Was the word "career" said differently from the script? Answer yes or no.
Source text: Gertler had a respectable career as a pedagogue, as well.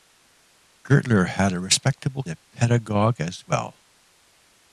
yes